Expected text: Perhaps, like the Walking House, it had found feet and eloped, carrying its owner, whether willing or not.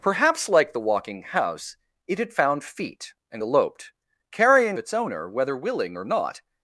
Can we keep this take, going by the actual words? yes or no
yes